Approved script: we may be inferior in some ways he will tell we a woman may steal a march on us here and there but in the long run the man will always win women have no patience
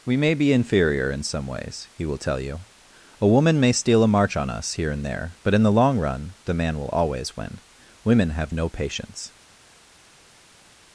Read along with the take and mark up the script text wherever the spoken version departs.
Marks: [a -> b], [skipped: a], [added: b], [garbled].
we may be inferior in some ways he will tell [we -> you] a woman may steal a march on us here and there but in the long run the man will always win women have no patience